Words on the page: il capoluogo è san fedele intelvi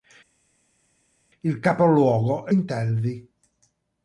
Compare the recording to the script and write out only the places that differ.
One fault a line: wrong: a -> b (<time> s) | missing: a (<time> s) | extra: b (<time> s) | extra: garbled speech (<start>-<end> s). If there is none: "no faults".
missing: san fedele (2.5 s)